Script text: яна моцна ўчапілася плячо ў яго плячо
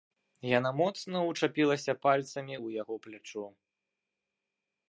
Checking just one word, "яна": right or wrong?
right